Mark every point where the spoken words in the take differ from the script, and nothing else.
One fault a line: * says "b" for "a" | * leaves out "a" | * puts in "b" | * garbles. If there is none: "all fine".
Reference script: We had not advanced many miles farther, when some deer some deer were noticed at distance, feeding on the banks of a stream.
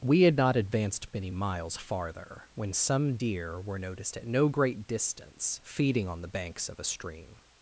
* leaves out "some deer"
* puts in "no great"